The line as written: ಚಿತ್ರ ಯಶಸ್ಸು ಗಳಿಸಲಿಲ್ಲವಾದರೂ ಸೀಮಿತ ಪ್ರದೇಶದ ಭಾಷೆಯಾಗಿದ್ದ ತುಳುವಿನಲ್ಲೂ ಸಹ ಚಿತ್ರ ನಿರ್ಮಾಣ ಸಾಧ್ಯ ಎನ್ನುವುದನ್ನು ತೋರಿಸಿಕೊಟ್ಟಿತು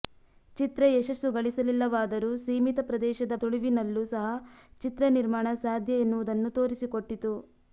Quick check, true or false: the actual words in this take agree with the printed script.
false